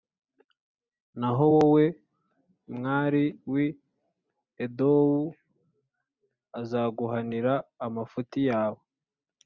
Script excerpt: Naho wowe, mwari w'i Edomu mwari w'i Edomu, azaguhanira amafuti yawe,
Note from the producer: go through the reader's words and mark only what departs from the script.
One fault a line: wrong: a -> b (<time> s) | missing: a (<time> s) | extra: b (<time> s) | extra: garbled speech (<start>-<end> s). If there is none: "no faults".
missing: mwari w'i Edomu (5.2 s)